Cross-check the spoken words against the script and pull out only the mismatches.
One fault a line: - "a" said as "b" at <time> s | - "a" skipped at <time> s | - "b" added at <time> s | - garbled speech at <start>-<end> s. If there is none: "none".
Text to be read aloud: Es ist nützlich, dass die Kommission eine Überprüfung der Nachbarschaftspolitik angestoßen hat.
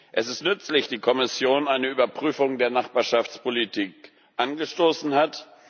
- "dass" skipped at 0.9 s